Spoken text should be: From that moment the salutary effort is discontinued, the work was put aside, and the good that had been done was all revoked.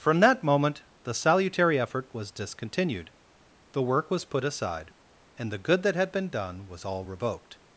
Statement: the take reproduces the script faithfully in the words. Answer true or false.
false